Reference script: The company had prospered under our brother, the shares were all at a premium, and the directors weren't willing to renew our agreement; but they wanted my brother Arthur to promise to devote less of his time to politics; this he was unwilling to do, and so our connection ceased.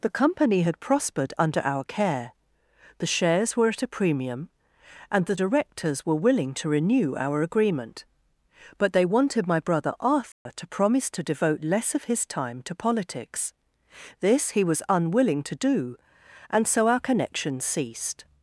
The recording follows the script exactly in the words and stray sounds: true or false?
false